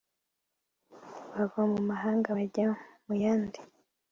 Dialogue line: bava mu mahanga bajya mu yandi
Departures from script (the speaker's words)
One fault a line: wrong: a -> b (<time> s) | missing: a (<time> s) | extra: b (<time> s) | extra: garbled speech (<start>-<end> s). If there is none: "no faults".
no faults